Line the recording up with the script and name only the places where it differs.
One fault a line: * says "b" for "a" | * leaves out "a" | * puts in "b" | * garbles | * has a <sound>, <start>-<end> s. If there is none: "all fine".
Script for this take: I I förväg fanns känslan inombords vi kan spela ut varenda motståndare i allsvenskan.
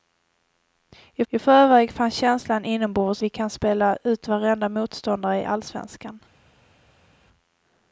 all fine